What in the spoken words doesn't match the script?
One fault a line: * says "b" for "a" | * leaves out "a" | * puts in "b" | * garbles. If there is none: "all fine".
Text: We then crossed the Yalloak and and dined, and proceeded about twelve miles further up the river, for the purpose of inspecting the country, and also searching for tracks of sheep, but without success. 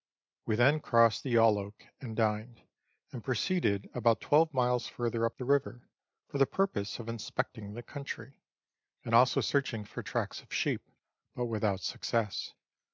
* leaves out "and"